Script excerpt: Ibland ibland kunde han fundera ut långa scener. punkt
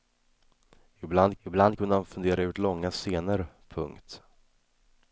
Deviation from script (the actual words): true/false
false